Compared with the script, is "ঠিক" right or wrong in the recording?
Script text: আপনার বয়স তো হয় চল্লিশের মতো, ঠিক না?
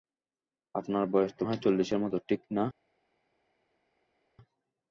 right